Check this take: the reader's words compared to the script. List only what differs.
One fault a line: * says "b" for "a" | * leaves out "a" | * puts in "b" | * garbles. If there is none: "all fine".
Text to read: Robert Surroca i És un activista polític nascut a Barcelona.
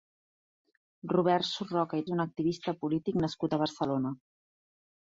all fine